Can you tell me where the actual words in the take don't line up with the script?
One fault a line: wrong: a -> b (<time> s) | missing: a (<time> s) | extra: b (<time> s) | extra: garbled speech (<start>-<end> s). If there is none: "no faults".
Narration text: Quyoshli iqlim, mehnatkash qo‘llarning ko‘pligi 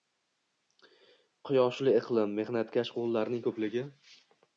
no faults